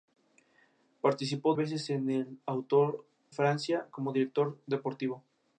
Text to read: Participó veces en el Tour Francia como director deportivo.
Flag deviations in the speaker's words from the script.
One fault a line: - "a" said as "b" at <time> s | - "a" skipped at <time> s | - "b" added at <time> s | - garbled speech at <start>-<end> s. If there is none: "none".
none